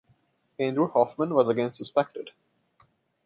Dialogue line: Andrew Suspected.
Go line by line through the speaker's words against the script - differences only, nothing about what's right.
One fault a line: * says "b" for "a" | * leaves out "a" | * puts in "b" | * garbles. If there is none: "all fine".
* puts in "Hoffman was again"